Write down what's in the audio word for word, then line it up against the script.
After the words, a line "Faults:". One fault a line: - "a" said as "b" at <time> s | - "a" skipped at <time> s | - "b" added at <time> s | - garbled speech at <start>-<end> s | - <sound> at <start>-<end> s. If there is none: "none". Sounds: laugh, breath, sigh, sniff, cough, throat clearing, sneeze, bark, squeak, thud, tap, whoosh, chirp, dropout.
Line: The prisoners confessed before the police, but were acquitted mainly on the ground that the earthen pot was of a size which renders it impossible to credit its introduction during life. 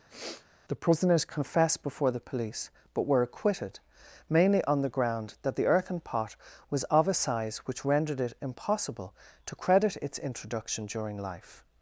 The prisoners confessed before the police, but were acquitted mainly on the ground that the earthen pot was of a size which rendered it impossible to credit its introduction during life.
Faults:
- sniff at 0.1-0.5 s
- "renders" said as "rendered" at 7.9 s